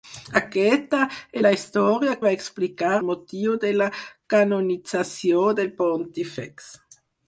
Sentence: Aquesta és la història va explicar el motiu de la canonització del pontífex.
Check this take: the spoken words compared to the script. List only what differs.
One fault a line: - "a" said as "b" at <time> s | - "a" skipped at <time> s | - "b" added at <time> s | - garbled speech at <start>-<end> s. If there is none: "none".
none